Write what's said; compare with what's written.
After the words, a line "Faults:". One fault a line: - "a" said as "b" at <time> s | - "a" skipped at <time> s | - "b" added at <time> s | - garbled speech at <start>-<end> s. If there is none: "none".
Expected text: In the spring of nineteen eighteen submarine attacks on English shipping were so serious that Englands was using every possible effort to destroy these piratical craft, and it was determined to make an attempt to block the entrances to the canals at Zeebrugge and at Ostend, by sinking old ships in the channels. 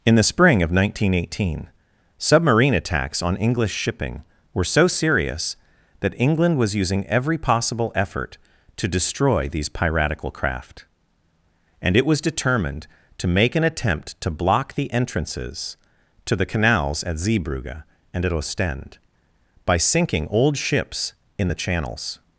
In the spring of nineteen eighteen submarine attacks on English shipping were so serious that England was using every possible effort to destroy these piratical craft, and it was determined to make an attempt to block the entrances to the canals at Zeebrugge and at Ostend, by sinking old ships in the channels.
Faults:
- "Englands" said as "England" at 6.2 s